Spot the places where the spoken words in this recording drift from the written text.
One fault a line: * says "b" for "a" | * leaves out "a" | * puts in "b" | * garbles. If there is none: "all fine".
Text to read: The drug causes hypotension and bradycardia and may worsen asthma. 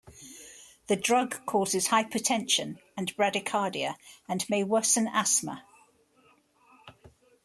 all fine